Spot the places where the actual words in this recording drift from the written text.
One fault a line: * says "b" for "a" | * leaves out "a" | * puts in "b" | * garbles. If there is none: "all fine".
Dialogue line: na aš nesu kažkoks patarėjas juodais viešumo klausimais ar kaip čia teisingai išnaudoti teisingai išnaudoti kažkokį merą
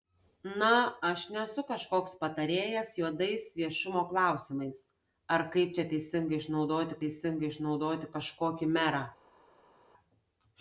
all fine